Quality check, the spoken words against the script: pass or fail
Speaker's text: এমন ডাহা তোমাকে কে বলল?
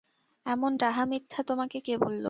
fail